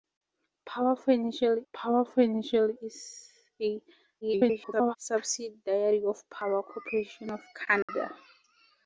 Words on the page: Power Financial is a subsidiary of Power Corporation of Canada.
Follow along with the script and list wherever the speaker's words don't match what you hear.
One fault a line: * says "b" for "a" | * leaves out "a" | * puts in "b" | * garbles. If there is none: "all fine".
* puts in "power Financial"
* garbles